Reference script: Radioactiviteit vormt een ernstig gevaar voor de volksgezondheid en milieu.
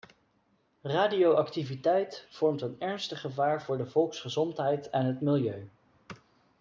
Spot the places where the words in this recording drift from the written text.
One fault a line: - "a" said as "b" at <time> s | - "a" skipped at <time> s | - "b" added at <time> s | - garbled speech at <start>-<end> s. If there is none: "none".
- "het" added at 5.0 s